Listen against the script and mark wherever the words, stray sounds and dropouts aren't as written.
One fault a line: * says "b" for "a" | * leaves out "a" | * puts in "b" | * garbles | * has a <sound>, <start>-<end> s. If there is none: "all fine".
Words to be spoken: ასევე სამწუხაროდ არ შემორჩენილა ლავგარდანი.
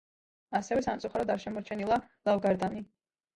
all fine